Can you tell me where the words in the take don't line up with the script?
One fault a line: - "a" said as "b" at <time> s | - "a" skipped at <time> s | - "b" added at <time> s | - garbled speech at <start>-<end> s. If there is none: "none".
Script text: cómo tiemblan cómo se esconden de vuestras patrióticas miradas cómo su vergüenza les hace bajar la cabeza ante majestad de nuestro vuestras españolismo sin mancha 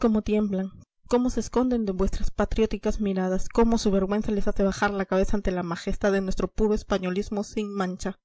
- "la" added at 5.5 s
- "vuestras" said as "puro" at 6.5 s